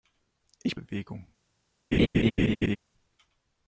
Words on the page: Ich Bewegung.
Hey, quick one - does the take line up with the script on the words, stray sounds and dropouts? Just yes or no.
no